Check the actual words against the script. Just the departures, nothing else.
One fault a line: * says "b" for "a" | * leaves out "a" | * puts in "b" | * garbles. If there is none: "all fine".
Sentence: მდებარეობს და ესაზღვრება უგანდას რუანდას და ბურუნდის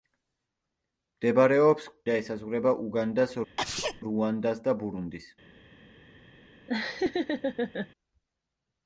all fine